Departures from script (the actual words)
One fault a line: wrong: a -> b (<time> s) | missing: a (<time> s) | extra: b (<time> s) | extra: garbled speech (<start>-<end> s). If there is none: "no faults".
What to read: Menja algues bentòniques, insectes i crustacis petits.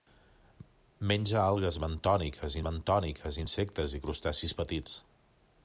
extra: bentòniques (2.7 s)